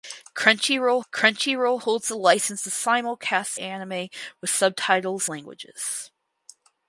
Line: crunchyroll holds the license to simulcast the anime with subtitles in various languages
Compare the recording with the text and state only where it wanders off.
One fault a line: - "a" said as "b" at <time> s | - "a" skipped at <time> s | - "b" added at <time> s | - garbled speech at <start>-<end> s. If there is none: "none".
- "crunchyroll" added at 1.1 s
- "the" skipped at 3.6 s
- "in various" skipped at 5.3 s